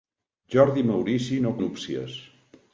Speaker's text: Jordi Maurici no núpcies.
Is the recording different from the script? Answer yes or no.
no